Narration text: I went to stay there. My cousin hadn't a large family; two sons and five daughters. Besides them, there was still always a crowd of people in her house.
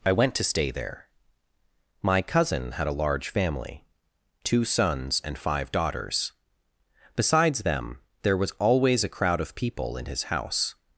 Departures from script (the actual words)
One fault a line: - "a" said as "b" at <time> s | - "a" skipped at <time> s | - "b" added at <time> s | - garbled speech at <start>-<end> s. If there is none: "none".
- "hadn't" said as "had" at 2.7 s
- "still" skipped at 8.5 s
- "her" said as "his" at 10.0 s